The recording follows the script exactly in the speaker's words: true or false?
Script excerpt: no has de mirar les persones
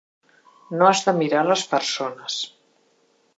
true